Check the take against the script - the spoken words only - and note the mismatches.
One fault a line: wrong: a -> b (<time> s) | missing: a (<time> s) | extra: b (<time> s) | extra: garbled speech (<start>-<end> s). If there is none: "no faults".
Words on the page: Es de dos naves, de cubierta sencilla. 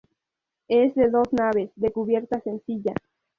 no faults